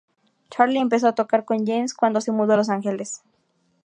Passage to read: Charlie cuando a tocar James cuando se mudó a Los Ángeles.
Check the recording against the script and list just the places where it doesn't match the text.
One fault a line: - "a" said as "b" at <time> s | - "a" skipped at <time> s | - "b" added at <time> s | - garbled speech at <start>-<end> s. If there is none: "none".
- "cuando" said as "empezó" at 0.8 s
- "con" added at 1.4 s